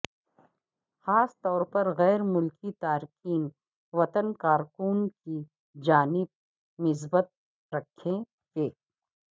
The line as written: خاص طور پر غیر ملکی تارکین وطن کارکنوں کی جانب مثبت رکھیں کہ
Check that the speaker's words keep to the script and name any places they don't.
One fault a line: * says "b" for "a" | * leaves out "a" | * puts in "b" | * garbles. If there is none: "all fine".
all fine